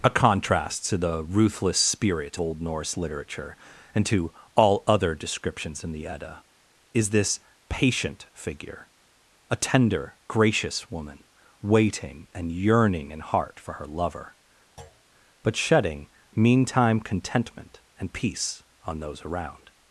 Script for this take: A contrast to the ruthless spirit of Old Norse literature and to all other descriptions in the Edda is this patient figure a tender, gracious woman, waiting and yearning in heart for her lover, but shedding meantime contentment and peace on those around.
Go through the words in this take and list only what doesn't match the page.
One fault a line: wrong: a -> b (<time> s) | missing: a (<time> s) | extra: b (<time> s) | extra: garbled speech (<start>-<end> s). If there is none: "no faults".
missing: of (2.4 s)